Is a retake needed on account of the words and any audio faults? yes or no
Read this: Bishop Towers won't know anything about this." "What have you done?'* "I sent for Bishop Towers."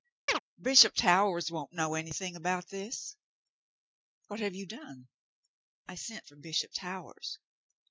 yes